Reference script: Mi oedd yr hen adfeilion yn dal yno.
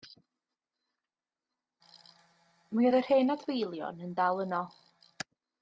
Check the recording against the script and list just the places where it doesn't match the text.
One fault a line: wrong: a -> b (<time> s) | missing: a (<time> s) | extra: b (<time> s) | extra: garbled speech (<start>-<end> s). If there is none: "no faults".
no faults